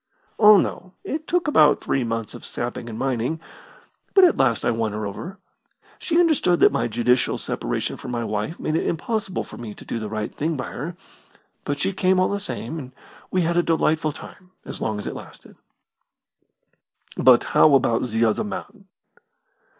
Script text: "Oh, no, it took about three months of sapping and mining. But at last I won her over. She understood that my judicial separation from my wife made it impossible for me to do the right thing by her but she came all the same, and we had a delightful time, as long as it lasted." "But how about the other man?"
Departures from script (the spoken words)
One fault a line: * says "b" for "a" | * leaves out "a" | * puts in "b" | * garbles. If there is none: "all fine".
all fine